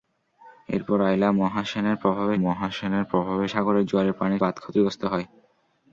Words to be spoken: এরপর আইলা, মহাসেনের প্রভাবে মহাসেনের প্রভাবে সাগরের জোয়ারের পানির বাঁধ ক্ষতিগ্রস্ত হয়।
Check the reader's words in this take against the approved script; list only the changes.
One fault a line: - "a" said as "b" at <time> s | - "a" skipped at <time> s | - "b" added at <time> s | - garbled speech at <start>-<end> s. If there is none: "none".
none